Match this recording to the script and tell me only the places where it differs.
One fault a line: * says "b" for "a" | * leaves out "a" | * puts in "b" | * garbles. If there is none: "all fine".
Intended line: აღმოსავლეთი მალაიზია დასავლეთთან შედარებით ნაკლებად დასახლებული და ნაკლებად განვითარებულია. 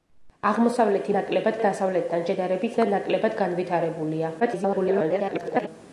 * says "ნაკლებად" for "მალაიზია"
* leaves out "ნაკლებად დასახლებული"
* garbles